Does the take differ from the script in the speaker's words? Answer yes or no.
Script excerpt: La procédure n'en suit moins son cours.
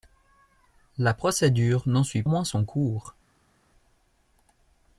no